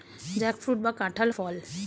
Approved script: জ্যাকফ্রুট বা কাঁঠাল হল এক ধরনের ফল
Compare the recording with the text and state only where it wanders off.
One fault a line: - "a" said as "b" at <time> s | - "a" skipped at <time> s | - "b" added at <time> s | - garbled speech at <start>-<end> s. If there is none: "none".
- "হল এক ধরনের" skipped at 1.3 s